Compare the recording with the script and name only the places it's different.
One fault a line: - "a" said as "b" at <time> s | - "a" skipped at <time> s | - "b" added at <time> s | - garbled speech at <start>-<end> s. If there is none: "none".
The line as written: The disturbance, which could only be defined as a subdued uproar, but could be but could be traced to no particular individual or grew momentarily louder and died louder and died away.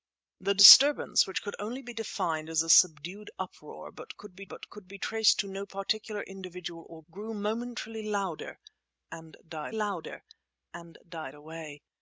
none